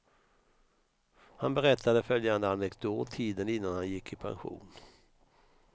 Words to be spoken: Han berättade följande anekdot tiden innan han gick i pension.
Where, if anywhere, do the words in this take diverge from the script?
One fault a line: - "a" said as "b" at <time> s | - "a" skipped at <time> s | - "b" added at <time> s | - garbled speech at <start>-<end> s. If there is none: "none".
none